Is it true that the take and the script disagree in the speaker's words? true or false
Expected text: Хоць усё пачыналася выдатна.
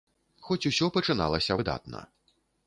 false